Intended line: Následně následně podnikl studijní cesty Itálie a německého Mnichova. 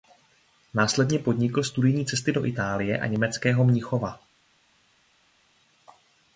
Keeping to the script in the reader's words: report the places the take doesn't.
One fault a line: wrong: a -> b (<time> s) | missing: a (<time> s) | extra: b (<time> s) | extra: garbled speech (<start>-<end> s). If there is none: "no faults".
missing: následně (1.2 s)
extra: do (2.3 s)